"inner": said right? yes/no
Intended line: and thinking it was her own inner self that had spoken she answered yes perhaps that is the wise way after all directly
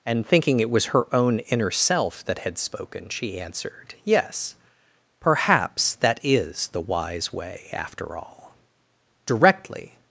yes